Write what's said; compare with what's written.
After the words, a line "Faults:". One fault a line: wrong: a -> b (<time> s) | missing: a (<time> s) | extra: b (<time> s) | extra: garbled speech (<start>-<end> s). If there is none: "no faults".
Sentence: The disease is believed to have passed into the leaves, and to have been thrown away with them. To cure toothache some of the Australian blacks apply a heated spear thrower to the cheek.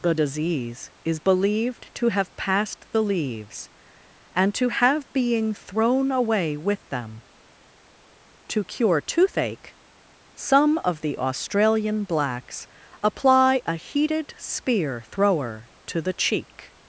The disease is believed to have passed the leaves, and to have being thrown away with them. To cure toothache some of the Australian blacks apply a heated spear thrower to the cheek.
Faults:
missing: into (2.8 s)
wrong: been -> being (5.1 s)